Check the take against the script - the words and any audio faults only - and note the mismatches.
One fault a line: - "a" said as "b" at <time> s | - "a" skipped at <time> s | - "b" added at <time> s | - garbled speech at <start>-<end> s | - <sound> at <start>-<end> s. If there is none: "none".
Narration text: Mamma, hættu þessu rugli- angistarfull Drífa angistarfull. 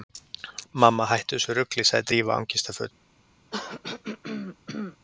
- "angistarfull" said as "sagði" at 1.9 s
- throat clearing at 3.5-5.0 s